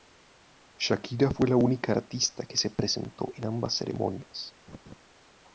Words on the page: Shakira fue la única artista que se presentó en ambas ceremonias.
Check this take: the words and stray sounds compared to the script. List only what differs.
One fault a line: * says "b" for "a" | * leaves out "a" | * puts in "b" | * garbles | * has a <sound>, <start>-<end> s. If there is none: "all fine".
* has a laugh, 4.7-5.0 s